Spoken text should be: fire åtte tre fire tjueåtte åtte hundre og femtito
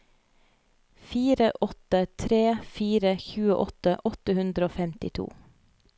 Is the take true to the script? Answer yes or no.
yes